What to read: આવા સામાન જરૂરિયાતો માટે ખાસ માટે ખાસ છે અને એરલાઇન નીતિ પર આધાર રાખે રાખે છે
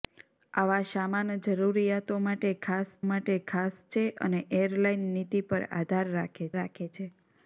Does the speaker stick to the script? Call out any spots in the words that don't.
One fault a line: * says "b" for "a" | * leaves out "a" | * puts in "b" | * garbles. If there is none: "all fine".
all fine